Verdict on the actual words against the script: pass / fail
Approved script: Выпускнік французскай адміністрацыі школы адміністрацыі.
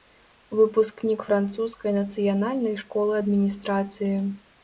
fail